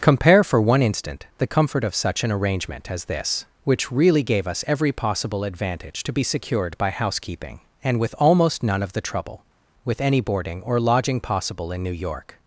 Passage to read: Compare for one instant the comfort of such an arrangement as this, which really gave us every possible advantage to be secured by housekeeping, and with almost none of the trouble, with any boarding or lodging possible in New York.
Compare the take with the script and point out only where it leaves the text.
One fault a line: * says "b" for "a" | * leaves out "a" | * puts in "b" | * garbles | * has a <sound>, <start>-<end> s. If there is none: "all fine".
all fine